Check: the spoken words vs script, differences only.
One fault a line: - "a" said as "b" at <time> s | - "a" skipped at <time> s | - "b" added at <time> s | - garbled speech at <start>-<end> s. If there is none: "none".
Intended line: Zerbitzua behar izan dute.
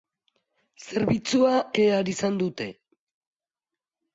none